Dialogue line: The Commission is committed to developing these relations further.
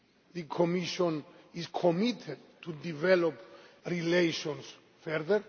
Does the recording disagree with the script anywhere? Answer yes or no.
yes